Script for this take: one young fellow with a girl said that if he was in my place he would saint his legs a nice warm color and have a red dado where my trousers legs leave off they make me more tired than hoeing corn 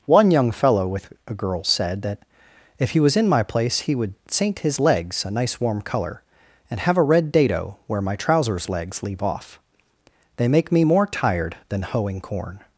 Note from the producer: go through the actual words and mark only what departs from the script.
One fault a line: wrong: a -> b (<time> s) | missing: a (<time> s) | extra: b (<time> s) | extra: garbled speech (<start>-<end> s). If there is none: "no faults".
no faults